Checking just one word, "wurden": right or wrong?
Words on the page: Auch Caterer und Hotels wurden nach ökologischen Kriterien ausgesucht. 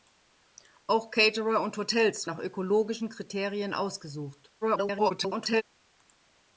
wrong